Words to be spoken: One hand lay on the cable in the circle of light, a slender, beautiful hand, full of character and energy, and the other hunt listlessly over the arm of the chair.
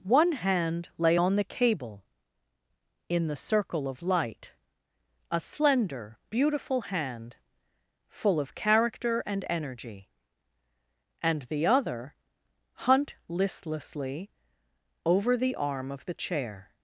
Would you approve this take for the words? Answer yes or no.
yes